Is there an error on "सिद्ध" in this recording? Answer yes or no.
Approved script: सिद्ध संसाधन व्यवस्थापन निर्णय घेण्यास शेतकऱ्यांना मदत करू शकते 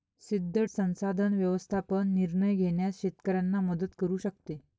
no